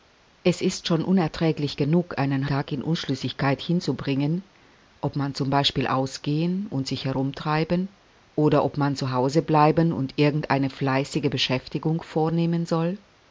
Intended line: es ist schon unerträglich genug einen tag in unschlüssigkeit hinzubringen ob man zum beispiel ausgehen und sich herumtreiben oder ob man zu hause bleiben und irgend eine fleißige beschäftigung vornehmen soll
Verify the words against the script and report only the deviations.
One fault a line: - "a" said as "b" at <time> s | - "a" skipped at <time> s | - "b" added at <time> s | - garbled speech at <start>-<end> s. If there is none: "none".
none